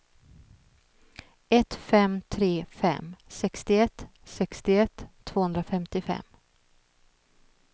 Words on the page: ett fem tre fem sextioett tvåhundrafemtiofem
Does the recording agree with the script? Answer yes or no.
no